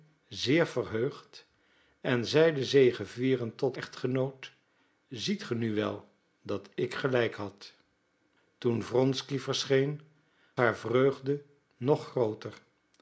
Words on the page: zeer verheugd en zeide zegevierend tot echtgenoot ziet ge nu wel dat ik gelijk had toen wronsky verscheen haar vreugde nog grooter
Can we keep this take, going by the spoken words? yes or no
yes